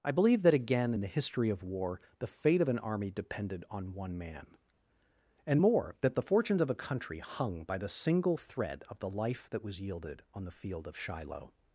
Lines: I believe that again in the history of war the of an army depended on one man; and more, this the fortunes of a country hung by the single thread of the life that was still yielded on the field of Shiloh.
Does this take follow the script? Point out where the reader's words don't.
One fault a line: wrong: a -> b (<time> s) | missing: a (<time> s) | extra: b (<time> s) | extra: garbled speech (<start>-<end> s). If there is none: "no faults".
extra: fate (2.3 s)
wrong: this -> that (6.0 s)
missing: still (9.8 s)